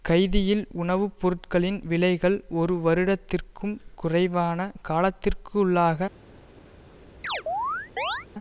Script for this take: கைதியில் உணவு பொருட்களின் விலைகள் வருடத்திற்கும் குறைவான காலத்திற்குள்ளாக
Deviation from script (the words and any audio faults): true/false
true